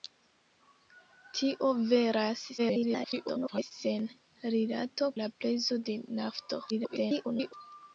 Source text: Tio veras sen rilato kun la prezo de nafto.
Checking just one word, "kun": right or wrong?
wrong